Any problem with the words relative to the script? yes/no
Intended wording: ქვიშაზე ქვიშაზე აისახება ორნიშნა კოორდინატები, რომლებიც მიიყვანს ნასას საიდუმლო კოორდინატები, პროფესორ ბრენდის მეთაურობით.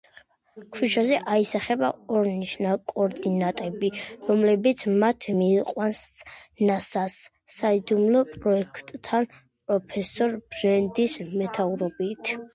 yes